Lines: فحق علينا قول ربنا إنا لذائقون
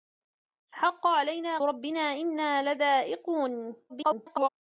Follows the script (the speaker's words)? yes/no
no